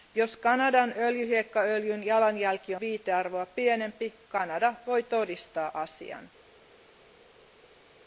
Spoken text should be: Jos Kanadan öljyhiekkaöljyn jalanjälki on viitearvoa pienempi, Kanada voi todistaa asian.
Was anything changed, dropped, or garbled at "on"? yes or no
yes